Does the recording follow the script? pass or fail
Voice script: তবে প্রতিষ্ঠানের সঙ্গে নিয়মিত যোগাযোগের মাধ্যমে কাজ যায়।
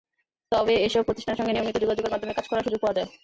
fail